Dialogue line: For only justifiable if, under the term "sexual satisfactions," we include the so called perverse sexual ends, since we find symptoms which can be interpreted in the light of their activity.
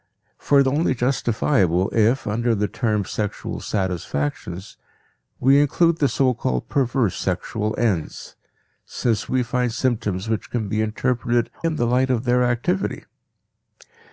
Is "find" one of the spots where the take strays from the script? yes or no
no